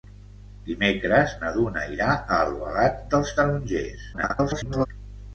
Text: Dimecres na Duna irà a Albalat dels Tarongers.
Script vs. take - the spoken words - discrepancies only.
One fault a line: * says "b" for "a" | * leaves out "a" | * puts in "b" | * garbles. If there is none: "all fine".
* garbles